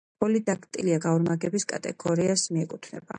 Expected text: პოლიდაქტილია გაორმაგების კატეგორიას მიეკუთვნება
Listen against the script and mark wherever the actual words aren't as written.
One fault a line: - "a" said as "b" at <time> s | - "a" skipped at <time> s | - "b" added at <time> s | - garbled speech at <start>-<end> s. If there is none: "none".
none